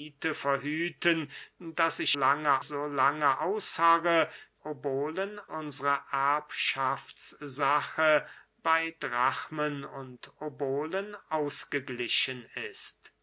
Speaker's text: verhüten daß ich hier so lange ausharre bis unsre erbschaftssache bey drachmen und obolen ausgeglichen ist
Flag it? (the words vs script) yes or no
yes